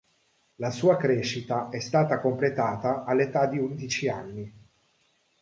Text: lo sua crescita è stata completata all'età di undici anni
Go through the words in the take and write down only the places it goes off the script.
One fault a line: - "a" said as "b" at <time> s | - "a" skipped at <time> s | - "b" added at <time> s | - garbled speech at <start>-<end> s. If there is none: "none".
- "lo" said as "la" at 0.6 s